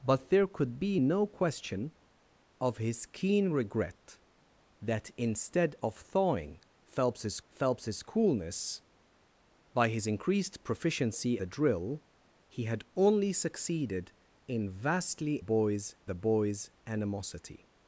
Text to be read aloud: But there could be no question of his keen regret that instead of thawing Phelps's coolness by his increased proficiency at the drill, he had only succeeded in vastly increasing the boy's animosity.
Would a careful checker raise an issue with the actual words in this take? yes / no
yes